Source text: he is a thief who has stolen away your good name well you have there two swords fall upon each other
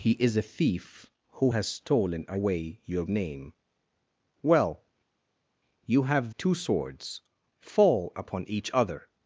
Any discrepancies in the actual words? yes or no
yes